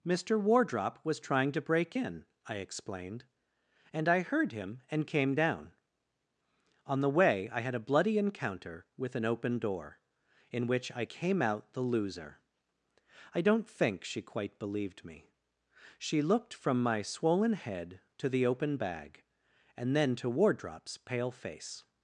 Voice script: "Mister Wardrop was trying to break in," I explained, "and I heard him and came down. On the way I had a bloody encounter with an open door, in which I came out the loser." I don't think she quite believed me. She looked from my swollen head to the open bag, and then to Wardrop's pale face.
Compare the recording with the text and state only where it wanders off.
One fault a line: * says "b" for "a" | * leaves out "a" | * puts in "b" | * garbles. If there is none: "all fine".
all fine